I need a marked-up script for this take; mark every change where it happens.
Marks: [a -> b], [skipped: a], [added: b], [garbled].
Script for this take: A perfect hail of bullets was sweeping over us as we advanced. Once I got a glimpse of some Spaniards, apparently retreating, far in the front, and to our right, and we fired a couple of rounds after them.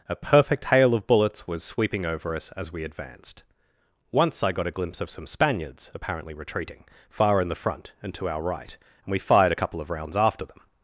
A perfect hail of bullets was sweeping over us as we advanced. Once I got a glimpse of some Spaniards, apparently retreating, far in the front, and to our right, and we fired a couple of rounds after them.